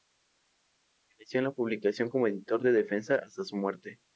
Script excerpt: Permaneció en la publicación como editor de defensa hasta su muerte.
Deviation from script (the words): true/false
false